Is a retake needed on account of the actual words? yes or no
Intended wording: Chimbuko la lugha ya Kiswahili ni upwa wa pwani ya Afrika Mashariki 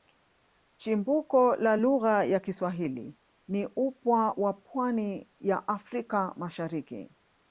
no